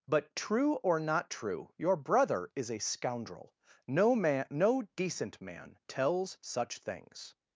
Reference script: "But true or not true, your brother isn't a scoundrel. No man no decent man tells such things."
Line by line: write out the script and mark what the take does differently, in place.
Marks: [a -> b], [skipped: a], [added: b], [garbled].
"But true or not true, your brother [isn't -> is] a scoundrel. No man no decent man tells such things."